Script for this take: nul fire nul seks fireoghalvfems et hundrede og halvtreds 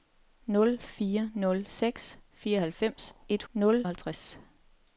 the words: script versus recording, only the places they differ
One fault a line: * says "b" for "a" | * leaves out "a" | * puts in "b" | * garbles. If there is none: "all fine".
* says "nul" for "hundrede"